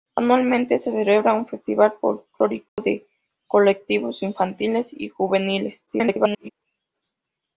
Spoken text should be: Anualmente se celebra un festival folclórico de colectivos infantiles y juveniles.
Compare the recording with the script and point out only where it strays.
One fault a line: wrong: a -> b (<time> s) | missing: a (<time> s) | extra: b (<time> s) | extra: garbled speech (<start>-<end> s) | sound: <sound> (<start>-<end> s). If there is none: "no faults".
sound: dropout (2.7-2.8 s)
extra: garbled speech (5.9-6.5 s)